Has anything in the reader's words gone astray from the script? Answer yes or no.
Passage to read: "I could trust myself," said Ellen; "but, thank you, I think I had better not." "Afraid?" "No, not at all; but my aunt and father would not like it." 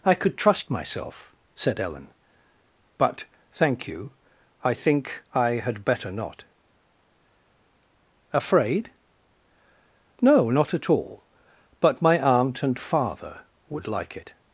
yes